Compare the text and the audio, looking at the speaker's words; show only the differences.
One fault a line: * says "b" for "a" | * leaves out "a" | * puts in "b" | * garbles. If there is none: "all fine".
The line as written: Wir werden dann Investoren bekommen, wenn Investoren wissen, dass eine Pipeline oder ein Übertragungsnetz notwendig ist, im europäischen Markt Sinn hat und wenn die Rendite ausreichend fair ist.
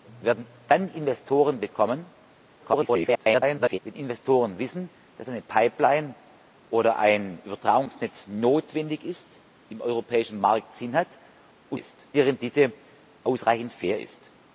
* garbles
* says "ist" for "wenn"